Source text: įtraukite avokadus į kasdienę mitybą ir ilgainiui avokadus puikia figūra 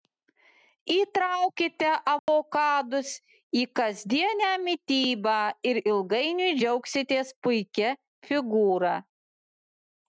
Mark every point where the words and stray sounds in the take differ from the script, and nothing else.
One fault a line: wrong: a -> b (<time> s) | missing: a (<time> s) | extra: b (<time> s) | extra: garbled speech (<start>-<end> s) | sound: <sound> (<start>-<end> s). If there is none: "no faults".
sound: dropout (2.2-2.3 s)
wrong: avokadus -> džiaugsitės (6.6 s)